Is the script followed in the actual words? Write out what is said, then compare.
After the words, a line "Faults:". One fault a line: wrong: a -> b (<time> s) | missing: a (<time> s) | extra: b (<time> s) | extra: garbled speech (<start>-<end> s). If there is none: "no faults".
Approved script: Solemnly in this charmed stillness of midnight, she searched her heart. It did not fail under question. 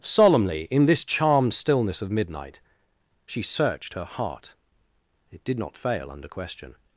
Solemnly in this charmed stillness of midnight, she searched her heart. It did not fail under question.
Faults:
no faults